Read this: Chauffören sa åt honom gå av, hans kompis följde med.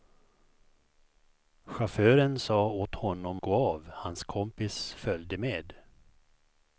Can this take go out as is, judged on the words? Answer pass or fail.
pass